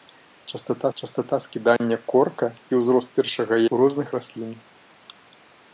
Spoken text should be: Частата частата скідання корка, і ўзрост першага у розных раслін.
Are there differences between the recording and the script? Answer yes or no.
no